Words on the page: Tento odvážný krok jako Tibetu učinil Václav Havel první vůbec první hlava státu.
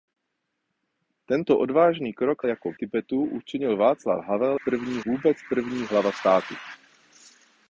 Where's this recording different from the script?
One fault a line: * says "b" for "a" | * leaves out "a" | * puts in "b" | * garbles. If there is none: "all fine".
all fine